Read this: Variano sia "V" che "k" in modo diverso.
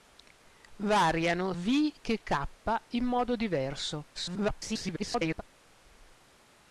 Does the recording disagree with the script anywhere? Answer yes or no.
yes